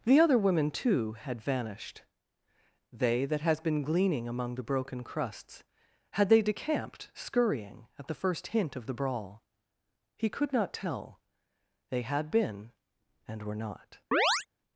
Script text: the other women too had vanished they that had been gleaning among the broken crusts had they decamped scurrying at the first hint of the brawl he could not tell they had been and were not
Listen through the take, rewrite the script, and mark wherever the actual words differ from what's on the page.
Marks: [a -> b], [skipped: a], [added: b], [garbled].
the other women too had vanished they that [had -> has] been gleaning among the broken crusts had they decamped scurrying at the first hint of the brawl he could not tell they had been and were not